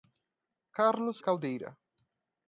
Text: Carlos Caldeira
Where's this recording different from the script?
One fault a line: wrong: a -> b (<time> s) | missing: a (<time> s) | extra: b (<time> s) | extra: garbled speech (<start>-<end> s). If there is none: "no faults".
no faults